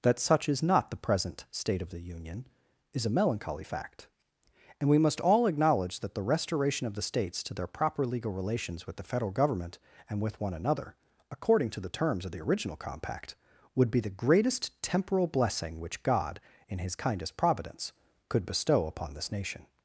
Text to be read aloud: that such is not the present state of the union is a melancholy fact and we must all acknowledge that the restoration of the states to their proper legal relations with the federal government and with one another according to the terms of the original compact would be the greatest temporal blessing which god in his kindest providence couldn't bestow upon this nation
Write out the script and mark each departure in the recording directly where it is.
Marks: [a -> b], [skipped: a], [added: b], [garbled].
that such is not the present state of the union is a melancholy fact and we must all acknowledge that the restoration of the states to their proper legal relations with the federal government and with one another according to the terms of the original compact would be the greatest temporal blessing which god in his kindest providence [couldn't -> could] bestow upon this nation